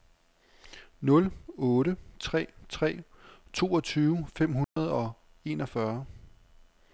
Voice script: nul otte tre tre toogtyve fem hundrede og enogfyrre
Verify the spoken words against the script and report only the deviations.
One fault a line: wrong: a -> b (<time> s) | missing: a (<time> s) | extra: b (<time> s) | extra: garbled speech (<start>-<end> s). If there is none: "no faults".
no faults